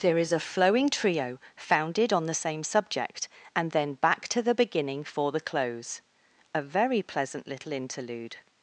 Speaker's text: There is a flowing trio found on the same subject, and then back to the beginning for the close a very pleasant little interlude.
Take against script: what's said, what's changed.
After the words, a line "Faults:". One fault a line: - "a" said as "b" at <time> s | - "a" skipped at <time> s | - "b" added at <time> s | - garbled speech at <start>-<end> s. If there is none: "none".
There is a flowing trio founded on the same subject, and then back to the beginning for the close a very pleasant little interlude.
Faults:
- "found" said as "founded" at 1.6 s